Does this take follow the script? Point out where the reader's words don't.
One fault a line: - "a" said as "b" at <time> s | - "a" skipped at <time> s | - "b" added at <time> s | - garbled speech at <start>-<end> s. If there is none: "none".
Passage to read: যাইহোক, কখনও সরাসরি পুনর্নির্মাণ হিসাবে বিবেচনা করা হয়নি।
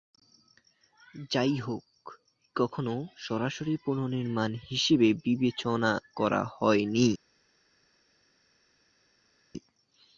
none